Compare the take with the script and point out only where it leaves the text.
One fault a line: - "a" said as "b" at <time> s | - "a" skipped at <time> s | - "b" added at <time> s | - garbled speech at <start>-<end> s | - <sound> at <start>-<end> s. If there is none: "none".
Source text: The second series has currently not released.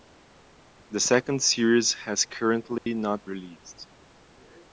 - dropout at 2.8-2.9 s